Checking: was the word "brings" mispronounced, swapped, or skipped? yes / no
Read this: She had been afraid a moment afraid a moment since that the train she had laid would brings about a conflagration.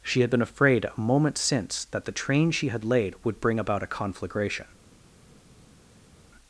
yes